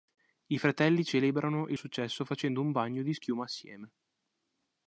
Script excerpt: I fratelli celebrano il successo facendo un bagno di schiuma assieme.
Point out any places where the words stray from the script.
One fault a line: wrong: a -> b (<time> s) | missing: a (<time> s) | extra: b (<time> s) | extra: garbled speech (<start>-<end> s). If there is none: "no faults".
no faults